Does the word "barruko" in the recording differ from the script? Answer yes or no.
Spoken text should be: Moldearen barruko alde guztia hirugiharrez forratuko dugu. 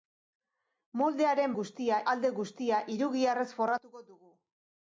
yes